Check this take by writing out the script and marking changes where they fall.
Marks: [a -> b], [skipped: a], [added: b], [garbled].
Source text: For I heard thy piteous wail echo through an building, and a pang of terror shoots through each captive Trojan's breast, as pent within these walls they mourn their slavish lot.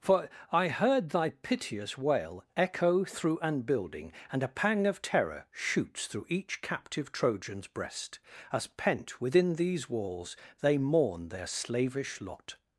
For I heard thy piteous wail echo through an building, and a pang of terror shoots through each captive Trojan's breast, as pent within these walls they mourn their slavish lot.